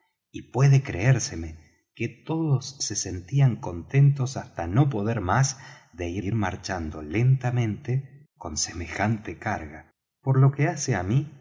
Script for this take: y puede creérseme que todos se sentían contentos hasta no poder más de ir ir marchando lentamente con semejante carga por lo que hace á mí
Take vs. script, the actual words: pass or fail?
pass